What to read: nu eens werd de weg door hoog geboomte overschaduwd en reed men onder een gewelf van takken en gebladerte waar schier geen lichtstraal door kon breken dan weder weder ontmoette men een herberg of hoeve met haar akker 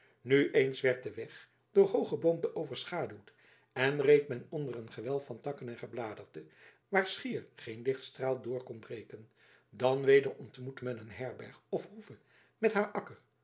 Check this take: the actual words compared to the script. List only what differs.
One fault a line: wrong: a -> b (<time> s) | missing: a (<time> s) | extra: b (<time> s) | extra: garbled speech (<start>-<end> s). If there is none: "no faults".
missing: weder (10.3 s)